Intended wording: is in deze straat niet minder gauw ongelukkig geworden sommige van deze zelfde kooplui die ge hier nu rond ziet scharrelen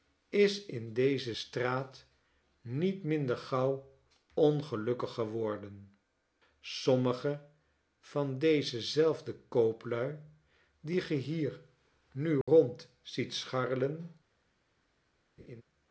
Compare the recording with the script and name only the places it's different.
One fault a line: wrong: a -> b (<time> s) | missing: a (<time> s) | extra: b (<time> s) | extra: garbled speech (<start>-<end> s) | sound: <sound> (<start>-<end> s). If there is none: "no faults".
sound: dropout (12.4-12.5 s)
sound: laugh (15.4-15.6 s)